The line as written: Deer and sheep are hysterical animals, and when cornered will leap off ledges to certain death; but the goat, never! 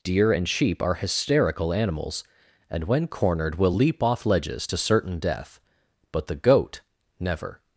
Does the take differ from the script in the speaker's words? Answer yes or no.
no